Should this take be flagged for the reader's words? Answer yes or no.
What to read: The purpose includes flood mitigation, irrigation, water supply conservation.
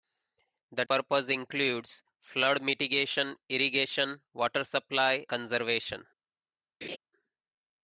no